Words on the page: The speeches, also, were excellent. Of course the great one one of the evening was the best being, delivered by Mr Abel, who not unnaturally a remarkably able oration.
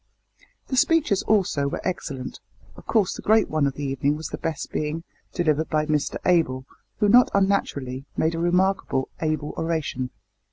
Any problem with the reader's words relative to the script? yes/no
yes